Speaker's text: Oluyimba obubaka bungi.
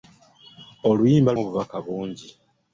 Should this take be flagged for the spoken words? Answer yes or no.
no